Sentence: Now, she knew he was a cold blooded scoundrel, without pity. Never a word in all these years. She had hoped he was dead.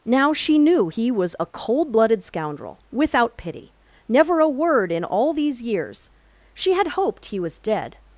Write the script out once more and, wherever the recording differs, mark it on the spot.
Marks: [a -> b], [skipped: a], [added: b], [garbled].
Now, she knew he was a cold blooded scoundrel, without pity. Never a word in all these years. She had hoped he was dead.